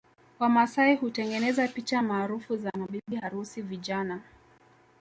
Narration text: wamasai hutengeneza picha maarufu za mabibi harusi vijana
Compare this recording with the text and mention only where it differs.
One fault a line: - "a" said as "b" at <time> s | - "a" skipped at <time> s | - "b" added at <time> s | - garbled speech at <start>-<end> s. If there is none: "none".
none